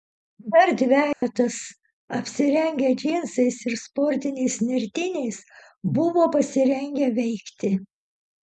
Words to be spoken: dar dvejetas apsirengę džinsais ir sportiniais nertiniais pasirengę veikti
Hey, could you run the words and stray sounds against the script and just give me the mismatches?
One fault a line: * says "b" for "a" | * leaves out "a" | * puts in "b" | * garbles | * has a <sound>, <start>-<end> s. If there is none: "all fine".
* has a dropout, 1.1-1.2 s
* puts in "buvo"